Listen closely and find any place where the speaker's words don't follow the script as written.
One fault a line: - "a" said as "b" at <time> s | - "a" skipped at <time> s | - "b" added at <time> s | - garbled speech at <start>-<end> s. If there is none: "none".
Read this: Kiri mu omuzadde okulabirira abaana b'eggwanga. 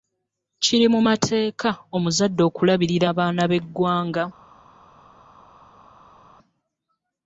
- "mateeka" added at 1.1 s